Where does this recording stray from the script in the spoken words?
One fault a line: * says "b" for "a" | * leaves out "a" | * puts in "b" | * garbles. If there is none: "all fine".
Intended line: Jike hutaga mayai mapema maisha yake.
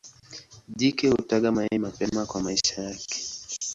* puts in "kwa"